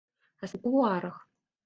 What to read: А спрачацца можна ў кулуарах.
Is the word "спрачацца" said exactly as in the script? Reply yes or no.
no